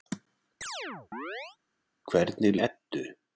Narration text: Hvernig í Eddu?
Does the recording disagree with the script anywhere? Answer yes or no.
no